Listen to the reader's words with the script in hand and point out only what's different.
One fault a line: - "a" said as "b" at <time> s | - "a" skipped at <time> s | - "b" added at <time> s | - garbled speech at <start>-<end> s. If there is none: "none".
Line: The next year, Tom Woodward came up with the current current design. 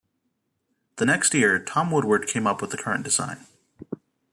- "current" skipped at 3.0 s